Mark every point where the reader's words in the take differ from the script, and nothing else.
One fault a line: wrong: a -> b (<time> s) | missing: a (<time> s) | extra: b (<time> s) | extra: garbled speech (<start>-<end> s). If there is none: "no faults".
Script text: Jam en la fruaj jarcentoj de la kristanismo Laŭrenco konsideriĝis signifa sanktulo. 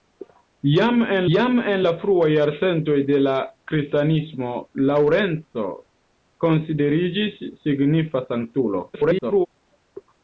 extra: jam en (1.3 s)
extra: garbled speech (8.9-9.5 s)